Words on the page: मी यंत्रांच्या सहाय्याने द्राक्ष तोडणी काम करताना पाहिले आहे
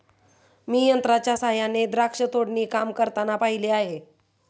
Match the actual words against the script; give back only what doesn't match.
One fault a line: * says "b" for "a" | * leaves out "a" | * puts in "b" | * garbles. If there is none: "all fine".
all fine